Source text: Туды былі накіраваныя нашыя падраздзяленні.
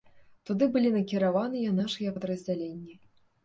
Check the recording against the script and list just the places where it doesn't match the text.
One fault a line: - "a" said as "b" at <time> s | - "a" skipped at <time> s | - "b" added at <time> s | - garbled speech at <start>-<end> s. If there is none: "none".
none